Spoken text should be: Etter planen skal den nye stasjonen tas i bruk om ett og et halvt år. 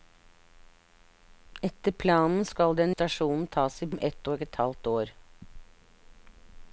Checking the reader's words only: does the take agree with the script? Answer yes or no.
no